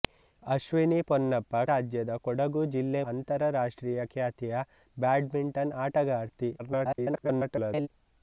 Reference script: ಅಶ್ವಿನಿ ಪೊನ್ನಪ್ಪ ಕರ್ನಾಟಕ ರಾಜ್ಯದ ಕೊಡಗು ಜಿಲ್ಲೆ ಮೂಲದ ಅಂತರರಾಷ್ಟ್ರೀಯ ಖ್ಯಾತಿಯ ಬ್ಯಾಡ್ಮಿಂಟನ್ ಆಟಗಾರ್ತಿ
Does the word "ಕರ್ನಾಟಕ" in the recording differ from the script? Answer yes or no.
yes